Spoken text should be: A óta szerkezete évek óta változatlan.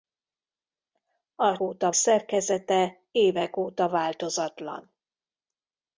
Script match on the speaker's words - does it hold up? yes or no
yes